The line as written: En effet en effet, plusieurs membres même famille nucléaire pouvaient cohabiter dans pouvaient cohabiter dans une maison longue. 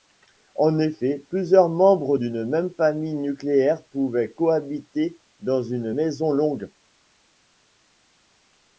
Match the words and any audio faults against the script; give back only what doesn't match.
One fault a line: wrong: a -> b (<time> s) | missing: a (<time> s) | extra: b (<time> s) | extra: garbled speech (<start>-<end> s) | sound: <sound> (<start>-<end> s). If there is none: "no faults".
missing: en effet (1.2 s)
extra: d'une (2.1 s)
missing: pouvaient cohabiter dans (5.6 s)